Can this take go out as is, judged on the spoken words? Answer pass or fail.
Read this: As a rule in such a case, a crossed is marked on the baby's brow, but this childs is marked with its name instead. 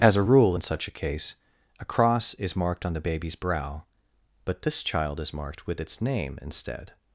fail